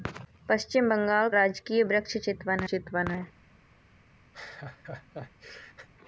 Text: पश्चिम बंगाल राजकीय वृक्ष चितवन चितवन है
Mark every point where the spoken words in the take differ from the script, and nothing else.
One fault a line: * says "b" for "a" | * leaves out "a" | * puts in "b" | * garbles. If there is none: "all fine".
all fine